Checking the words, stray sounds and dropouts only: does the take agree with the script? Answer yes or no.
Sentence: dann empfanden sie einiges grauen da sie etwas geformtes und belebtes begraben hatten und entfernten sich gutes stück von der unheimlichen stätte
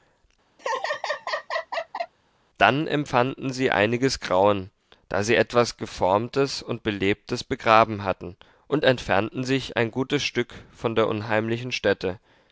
no